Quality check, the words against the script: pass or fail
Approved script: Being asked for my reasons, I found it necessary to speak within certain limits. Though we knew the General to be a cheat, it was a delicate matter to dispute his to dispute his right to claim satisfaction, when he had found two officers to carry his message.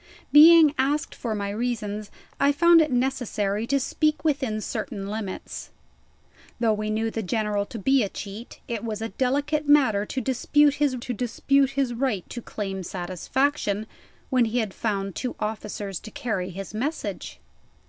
pass